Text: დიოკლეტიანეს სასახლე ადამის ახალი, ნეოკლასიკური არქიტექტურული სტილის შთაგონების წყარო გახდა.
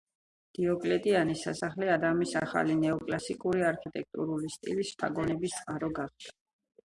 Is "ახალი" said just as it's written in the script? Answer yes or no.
yes